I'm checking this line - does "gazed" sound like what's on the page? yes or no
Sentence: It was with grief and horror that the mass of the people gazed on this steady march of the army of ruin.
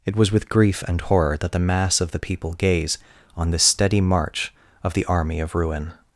no